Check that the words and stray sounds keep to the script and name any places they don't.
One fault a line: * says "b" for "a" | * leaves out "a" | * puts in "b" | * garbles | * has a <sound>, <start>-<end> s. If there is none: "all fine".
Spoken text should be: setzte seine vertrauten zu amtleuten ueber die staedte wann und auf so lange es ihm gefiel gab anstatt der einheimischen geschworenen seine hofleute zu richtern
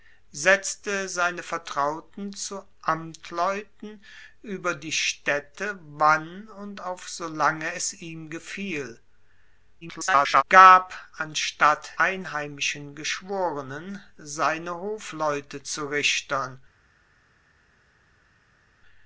* garbles
* leaves out "der"